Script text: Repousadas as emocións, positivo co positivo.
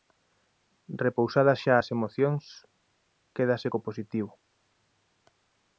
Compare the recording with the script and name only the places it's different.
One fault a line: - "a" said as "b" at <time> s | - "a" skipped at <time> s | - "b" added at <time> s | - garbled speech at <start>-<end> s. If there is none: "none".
- "xa" added at 1.6 s
- "positivo" said as "quédase" at 3.4 s